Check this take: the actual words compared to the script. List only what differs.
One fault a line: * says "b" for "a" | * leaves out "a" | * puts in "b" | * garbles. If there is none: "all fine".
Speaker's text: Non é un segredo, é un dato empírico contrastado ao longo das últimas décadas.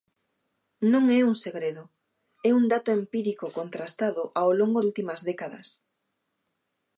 * leaves out "das"